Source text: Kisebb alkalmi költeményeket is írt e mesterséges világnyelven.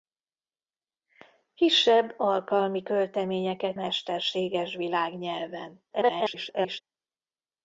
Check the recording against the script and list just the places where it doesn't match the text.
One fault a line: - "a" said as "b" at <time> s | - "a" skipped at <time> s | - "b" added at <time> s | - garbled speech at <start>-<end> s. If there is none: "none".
- "is írt e" skipped at 3.8 s
- garbled speech at 5.9-6.8 s